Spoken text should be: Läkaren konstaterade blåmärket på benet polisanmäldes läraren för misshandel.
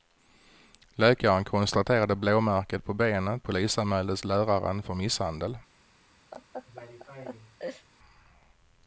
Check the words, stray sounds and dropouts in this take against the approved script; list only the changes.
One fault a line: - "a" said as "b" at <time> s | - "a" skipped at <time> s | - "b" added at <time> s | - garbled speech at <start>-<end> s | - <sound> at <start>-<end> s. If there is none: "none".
- laugh at 6.3-7.9 s